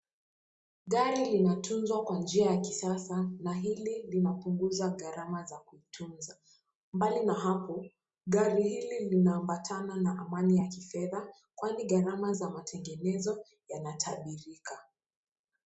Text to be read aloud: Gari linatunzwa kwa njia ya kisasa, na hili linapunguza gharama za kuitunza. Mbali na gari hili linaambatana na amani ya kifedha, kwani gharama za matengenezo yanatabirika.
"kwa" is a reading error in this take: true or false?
false